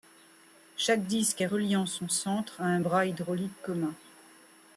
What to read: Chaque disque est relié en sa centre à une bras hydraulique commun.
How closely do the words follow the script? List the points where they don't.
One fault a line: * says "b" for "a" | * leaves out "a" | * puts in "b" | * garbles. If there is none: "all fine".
* says "son" for "sa"
* says "un" for "une"